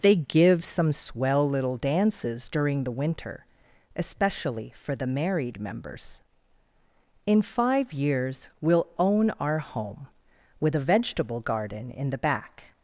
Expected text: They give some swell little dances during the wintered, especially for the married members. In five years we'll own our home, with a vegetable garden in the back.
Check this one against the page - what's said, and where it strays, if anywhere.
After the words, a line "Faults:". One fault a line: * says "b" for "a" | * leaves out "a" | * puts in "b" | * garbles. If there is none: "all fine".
They give some swell little dances during the winter, especially for the married members. In five years we'll own our home, with a vegetable garden in the back.
Faults:
* says "winter" for "wintered"